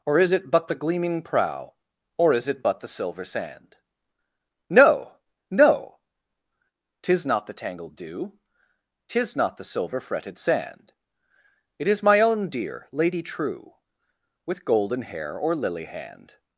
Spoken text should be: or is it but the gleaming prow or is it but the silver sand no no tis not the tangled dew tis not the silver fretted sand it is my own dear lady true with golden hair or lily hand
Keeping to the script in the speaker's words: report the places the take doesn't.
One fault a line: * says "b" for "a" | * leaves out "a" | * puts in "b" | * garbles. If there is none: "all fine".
all fine